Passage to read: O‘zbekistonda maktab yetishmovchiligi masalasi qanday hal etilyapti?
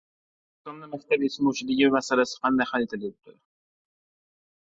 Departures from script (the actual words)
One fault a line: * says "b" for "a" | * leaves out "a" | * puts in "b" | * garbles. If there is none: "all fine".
all fine